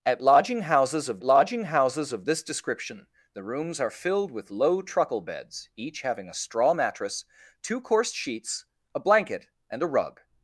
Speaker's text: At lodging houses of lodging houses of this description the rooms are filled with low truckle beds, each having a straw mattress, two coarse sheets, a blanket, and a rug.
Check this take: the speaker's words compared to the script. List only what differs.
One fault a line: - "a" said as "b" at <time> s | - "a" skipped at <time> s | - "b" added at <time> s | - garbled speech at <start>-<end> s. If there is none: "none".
none